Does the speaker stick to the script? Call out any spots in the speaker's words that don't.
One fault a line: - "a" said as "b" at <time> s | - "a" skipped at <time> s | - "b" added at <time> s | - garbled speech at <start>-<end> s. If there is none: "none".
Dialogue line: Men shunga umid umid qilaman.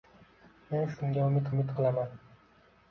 none